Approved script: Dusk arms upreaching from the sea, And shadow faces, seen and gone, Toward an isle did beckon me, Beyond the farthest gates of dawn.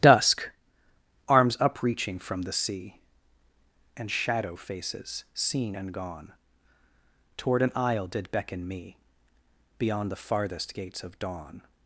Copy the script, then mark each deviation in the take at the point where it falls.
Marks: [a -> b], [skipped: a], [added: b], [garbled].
Dusk arms upreaching from the sea, And shadow faces, seen and gone, Toward an isle did beckon me, Beyond the farthest gates of dawn.